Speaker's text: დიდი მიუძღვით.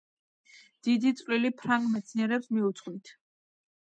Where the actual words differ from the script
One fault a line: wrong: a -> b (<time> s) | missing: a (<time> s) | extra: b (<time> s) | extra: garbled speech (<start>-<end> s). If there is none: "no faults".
extra: წვლილი ფრანგ მეცნიერებს (1.2 s)